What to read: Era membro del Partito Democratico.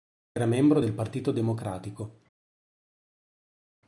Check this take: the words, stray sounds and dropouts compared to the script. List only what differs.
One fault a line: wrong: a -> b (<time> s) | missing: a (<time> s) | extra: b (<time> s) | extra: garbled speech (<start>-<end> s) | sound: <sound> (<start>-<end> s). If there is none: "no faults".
no faults